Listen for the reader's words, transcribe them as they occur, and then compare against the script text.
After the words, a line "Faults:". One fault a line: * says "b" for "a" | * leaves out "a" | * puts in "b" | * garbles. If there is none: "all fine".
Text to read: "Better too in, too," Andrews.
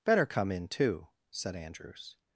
"Better come in, too," said Andrews.
Faults:
* says "come" for "too"
* puts in "said"